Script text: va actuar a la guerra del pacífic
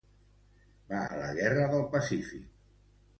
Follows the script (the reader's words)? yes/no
no